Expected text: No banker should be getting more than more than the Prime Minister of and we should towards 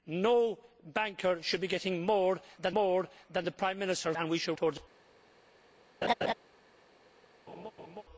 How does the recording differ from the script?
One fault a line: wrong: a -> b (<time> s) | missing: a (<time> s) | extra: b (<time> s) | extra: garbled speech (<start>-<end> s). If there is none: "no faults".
no faults